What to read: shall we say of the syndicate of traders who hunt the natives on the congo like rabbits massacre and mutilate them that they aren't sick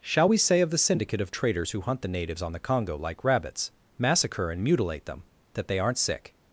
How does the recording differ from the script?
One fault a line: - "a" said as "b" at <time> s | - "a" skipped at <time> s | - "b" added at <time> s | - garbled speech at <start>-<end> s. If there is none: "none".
none